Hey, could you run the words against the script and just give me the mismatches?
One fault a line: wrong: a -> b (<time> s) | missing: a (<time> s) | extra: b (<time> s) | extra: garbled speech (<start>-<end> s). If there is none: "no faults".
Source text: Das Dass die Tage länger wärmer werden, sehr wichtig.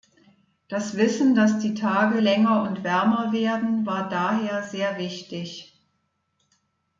extra: Wissen (1.0 s)
extra: und (2.7 s)
extra: war daher (3.9 s)